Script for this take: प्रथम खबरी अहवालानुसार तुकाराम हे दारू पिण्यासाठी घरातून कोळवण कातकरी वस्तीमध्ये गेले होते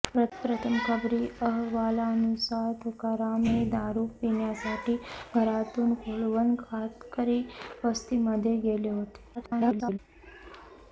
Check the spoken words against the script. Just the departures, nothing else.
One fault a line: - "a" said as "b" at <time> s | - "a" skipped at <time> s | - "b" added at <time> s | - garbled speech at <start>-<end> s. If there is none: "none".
- garbled speech at 9.3-10.0 s